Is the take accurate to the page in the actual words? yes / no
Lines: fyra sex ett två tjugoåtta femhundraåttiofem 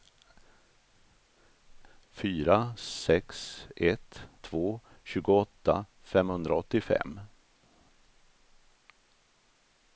yes